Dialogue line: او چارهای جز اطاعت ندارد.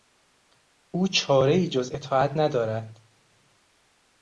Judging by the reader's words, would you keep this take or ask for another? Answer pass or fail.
pass